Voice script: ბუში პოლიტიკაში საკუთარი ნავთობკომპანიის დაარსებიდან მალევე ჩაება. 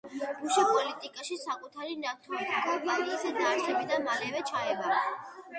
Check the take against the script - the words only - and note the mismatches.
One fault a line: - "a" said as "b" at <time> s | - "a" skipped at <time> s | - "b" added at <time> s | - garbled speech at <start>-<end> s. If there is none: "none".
none